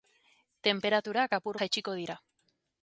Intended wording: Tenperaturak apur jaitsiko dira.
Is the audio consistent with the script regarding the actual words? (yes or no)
yes